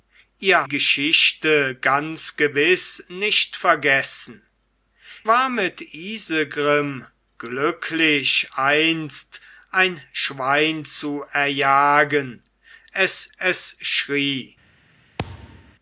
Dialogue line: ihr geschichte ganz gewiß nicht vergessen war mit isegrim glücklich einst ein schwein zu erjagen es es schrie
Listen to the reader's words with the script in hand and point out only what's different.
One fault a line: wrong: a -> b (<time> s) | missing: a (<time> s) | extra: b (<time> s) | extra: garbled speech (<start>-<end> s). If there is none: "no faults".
no faults